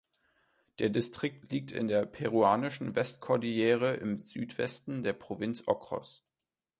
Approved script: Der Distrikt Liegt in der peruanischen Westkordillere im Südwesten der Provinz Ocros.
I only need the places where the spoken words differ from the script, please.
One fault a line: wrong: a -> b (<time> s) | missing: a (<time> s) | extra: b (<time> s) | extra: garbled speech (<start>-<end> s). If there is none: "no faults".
no faults